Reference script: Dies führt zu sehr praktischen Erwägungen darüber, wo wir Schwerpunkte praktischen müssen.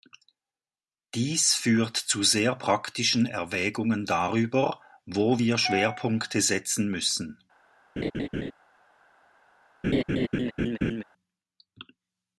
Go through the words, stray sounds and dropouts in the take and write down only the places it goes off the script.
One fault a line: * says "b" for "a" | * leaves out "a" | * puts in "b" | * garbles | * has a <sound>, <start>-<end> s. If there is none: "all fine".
* says "setzen" for "praktischen"
* has a laugh, 8.0-8.5 s
* has a laugh, 9.8-11.0 s